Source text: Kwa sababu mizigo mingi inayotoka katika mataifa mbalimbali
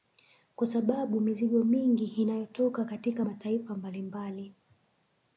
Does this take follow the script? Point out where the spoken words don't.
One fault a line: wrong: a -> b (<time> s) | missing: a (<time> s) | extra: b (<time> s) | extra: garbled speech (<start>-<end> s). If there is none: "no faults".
no faults